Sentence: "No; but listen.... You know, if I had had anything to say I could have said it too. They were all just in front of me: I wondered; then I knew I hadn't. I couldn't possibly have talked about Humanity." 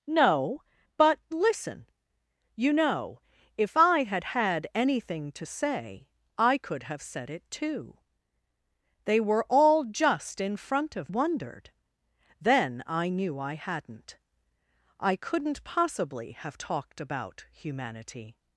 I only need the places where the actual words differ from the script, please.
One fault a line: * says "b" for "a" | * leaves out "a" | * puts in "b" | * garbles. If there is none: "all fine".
* leaves out "me I"